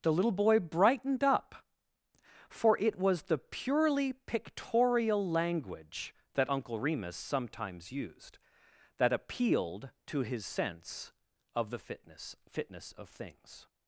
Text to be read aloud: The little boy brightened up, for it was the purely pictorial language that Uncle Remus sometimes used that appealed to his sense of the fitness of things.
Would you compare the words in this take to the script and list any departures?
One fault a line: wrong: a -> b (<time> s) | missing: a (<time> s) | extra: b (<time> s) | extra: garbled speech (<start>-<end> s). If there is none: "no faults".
extra: fitness (12.5 s)